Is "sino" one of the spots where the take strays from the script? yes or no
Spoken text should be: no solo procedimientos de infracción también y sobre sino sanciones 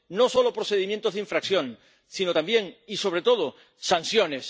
yes